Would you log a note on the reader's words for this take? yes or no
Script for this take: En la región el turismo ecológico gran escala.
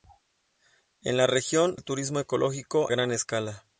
no